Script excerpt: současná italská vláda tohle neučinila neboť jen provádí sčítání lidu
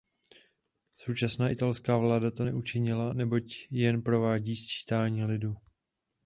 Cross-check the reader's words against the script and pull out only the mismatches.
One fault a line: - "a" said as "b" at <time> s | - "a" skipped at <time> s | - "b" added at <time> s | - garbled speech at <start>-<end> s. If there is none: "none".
- "tohle" said as "to" at 2.3 s